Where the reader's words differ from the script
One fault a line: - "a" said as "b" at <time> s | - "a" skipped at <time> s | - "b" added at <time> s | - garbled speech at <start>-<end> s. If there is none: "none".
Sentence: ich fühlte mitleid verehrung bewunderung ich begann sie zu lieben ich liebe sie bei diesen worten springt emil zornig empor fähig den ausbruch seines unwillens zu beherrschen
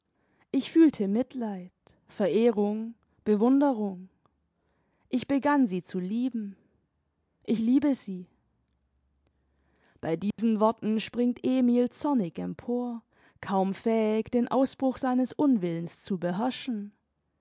- "kaum" added at 13.4 s